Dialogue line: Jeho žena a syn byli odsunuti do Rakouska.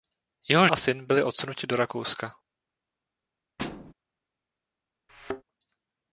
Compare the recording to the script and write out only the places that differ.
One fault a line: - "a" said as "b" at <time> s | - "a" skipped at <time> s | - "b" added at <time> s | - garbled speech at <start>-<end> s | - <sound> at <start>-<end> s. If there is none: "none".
- "žena" skipped at 0.7 s
- thud at 3.6-3.9 s
- thud at 5.1-5.4 s